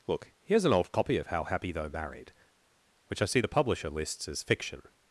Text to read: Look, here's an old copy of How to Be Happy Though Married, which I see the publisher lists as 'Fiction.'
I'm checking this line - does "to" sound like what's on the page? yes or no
no